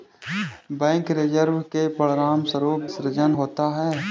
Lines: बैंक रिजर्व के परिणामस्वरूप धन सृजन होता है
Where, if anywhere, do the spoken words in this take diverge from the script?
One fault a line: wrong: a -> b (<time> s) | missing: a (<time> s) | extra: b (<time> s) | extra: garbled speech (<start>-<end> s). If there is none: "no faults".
missing: धन (2.9 s)